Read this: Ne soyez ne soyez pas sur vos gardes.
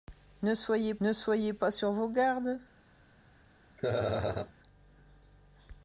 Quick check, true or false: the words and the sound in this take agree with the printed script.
false